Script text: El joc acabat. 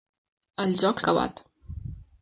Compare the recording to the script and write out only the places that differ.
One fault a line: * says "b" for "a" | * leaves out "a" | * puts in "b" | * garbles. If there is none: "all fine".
all fine